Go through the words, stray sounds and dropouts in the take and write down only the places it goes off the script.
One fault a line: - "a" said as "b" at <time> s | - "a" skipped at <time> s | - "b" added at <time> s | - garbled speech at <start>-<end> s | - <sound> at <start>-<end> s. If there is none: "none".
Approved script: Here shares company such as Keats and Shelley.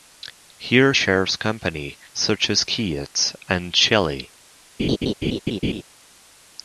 - laugh at 4.8-5.8 s